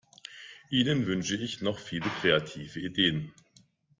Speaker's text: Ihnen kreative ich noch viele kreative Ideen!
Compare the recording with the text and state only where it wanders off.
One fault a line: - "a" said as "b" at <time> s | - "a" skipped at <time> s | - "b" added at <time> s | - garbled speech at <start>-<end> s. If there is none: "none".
- "kreative" said as "wünsche" at 1.0 s